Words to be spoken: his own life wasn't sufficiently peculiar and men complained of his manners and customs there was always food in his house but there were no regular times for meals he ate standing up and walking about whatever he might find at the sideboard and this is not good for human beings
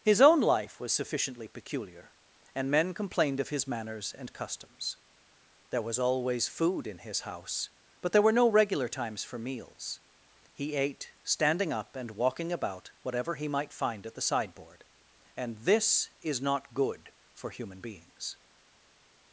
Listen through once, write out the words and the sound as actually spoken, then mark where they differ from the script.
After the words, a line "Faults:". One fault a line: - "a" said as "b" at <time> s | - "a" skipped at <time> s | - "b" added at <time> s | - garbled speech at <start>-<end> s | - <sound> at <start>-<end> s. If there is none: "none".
his own life was sufficiently peculiar and men complained of his manners and customs there was always food in his house but there were no regular times for meals he ate standing up and walking about whatever he might find at the sideboard and this is not good for human beings
Faults:
- "wasn't" said as "was" at 0.8 s